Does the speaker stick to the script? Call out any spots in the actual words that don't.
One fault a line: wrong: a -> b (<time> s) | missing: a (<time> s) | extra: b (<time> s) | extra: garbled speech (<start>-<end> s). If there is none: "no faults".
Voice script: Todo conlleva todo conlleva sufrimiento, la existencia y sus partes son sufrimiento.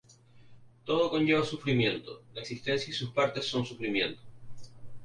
missing: todo conlleva (1.4 s)